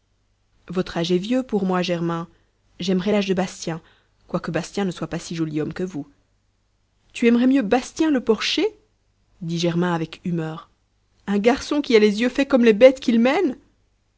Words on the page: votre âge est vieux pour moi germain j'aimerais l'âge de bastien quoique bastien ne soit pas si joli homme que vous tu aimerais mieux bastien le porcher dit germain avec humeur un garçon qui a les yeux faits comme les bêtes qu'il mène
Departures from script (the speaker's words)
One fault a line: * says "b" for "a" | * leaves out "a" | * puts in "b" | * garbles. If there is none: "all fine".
all fine